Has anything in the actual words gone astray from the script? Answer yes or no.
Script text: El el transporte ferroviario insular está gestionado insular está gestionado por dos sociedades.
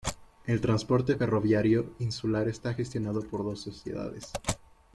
yes